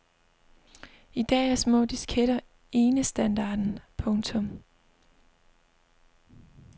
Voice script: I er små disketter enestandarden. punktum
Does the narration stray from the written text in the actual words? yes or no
yes